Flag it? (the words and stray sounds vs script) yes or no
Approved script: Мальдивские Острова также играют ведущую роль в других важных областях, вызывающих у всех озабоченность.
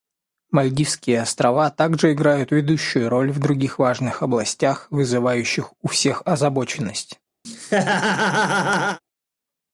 yes